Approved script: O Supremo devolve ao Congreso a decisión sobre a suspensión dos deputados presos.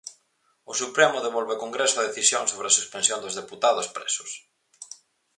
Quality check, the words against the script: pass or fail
pass